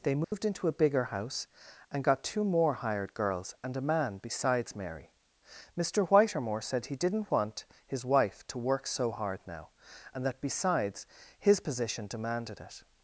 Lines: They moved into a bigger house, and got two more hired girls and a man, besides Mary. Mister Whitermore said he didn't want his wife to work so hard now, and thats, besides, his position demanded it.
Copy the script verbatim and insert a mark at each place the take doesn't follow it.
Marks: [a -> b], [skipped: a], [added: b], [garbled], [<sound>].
They moved [dropout] into a bigger house, and got two more hired girls and a man, besides Mary. Mister Whitermore said he didn't want his wife to work so hard now, and [thats, -> that] besides, his position demanded it.